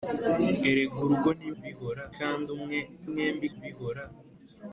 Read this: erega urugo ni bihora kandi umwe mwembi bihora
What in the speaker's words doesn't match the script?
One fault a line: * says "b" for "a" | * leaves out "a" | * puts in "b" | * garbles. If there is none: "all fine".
all fine